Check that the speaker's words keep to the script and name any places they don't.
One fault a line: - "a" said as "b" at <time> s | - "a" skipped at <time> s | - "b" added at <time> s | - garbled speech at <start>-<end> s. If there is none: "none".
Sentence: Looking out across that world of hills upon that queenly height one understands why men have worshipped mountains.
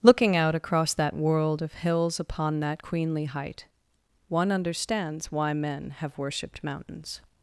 none